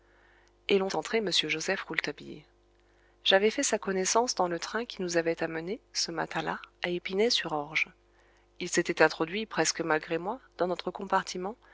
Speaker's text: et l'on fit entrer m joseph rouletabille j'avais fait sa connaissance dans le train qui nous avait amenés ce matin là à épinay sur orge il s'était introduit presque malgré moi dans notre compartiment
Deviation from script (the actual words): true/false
true